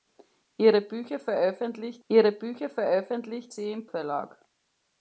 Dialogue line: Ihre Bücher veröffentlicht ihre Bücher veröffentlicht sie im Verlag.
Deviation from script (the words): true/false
false